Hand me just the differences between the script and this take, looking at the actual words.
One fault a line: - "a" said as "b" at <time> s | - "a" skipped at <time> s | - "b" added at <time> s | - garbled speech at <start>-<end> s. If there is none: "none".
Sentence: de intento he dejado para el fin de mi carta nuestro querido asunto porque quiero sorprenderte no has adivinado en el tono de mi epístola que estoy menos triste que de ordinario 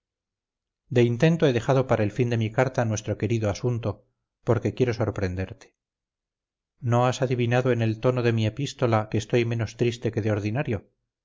none